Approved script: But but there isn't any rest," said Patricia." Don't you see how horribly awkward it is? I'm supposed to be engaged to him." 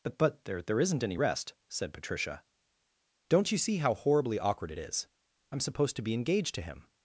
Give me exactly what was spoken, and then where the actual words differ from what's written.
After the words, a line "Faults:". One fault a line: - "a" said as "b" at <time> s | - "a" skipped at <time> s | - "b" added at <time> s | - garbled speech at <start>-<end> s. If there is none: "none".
But but there there isn't any rest," said Patricia." Don't you see how horribly awkward it is? I'm supposed to be engaged to him."
Faults:
- "there" added at 0.6 s